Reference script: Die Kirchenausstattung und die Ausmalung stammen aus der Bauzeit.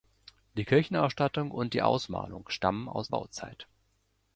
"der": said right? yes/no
no